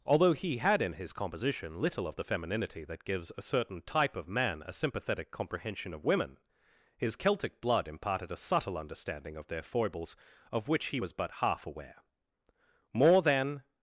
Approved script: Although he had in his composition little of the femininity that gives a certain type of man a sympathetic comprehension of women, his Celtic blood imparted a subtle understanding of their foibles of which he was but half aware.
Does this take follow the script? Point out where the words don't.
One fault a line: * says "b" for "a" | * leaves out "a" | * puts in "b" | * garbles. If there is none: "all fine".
* puts in "More than"